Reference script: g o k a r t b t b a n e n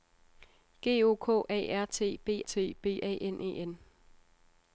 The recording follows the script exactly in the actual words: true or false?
true